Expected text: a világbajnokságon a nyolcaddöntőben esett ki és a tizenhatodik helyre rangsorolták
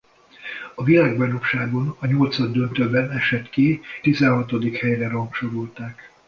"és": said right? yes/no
no